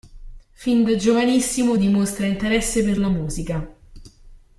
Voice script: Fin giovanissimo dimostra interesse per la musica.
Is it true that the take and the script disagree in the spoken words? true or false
true